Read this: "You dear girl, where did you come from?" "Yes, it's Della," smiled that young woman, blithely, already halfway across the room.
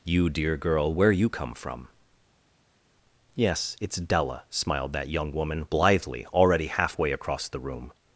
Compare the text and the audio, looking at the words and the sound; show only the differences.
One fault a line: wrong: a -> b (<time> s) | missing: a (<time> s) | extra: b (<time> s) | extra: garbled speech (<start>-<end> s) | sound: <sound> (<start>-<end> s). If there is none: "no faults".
missing: did (1.1 s)